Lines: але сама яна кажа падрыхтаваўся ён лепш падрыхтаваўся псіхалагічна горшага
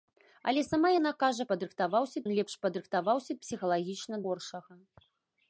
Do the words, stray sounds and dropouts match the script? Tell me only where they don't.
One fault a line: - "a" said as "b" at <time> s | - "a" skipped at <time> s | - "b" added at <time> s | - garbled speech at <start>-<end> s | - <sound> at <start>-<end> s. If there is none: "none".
none